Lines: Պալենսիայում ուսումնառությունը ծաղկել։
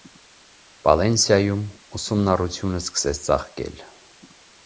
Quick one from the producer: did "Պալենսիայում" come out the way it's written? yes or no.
yes